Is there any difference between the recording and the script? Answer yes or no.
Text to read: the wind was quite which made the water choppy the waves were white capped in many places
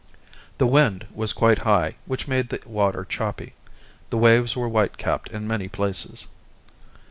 yes